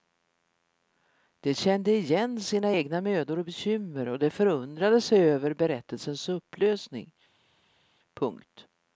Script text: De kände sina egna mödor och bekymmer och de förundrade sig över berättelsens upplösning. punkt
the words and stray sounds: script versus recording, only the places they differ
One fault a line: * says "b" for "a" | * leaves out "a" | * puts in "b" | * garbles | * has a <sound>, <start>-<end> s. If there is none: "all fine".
* puts in "igen"